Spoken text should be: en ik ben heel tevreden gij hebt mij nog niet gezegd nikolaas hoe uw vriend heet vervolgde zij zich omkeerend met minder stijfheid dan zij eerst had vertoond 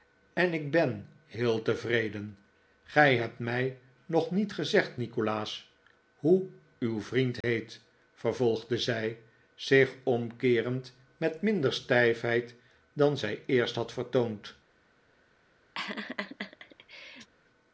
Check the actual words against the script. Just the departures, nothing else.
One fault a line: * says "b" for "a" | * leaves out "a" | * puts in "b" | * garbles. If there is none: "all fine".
all fine